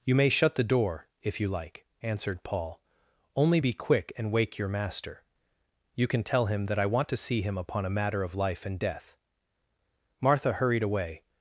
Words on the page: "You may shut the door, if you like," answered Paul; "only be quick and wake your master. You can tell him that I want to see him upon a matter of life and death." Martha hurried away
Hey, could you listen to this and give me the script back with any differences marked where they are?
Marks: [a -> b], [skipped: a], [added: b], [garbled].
"You may shut the door, if you like," answered Paul; "only be quick and wake your master. You can tell him that I want to see him upon a matter of life and death." Martha hurried away